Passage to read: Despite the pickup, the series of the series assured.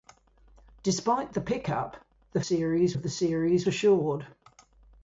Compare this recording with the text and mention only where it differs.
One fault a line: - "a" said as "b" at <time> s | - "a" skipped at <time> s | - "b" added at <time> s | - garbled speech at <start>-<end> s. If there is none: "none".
none